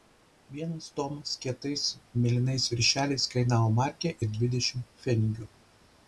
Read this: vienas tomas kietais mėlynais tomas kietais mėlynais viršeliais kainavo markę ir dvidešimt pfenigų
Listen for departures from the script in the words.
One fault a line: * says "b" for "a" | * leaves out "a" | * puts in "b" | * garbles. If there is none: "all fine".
* leaves out "tomas kietais mėlynais"